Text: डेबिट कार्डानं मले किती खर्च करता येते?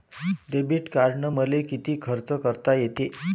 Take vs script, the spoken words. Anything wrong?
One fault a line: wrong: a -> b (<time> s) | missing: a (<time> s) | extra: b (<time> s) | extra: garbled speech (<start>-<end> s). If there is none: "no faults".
no faults